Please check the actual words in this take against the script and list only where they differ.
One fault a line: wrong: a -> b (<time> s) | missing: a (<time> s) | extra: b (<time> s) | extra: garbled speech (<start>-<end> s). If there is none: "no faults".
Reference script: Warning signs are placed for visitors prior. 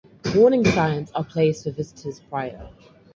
no faults